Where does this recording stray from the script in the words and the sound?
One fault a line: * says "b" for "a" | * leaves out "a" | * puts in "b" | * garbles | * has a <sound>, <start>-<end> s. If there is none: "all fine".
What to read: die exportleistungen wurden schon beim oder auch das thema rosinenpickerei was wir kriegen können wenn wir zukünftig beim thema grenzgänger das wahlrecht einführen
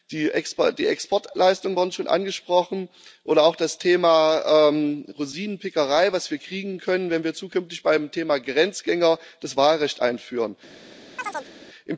* says "angesprochen" for "beim"
* has a chirp, 11.2-11.5 s